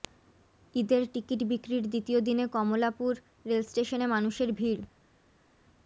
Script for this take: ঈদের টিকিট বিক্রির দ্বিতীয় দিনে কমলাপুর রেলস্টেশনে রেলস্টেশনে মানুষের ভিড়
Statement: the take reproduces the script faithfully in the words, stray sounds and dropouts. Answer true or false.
false